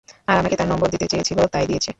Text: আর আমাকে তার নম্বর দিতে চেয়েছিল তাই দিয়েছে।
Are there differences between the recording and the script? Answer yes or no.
no